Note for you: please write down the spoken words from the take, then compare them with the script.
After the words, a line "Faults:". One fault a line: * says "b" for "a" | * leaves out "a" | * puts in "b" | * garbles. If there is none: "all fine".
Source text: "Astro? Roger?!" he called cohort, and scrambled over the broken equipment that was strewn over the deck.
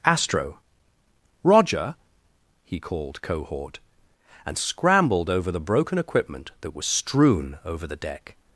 "Astro? Roger?!" he called cohort, and scrambled over the broken equipment that was strewn over the deck.
Faults:
all fine